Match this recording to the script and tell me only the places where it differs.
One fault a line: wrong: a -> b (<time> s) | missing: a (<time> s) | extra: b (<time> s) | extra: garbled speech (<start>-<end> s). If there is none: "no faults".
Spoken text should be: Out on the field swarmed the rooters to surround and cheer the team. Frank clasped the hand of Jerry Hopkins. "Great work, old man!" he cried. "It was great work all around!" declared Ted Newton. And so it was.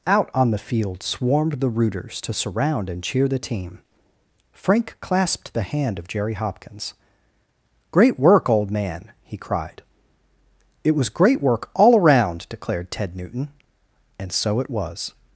no faults